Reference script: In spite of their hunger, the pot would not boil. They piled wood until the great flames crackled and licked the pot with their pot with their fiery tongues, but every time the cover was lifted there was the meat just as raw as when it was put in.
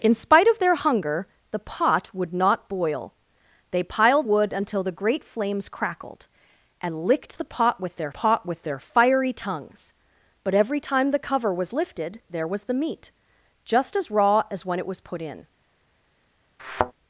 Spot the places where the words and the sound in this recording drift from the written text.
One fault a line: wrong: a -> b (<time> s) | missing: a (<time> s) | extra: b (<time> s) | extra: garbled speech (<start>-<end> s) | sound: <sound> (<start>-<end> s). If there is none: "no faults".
sound: thud (16.6-16.9 s)